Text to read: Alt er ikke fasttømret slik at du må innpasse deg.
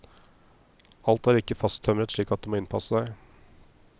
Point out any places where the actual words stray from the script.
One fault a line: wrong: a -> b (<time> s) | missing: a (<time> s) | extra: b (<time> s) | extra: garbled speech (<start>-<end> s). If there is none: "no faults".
no faults